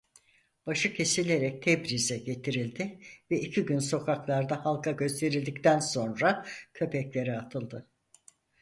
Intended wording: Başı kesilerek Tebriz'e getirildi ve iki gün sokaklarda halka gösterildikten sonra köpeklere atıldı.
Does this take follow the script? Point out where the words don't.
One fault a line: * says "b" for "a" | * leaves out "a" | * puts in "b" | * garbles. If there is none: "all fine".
all fine